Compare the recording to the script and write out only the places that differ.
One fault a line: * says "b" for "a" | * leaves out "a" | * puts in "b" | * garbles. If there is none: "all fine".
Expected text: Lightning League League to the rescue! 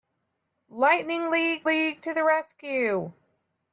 all fine